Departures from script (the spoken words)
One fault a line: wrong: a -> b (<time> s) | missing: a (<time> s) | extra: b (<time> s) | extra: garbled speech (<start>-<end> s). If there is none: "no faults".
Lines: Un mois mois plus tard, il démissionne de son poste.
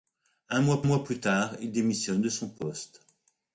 no faults